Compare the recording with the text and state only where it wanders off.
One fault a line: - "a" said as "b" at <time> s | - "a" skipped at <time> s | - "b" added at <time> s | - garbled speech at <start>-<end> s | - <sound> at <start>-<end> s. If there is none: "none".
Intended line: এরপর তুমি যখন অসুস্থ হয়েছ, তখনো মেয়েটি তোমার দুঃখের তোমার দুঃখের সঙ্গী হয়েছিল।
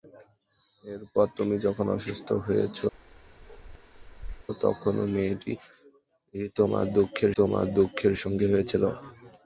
- bark at 2.9-4.5 s